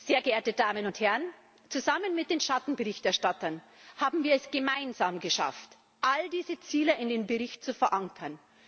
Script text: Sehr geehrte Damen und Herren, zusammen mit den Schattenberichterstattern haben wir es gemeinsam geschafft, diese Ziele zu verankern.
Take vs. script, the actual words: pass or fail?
fail